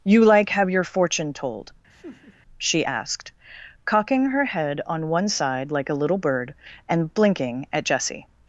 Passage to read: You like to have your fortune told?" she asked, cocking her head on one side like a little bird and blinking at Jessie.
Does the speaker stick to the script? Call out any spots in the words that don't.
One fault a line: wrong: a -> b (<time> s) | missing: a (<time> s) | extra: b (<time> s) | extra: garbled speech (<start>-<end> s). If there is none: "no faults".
missing: to (0.5 s)